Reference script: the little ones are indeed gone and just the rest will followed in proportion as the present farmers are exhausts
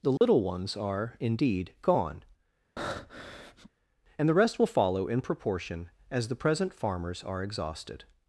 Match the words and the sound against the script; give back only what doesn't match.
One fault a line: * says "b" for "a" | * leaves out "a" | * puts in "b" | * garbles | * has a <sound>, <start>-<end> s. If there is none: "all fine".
* has a dropout, 0.2-0.2 s
* has a breath, 2.8-3.7 s
* leaves out "just"
* says "follow" for "followed"
* says "exhausted" for "exhausts"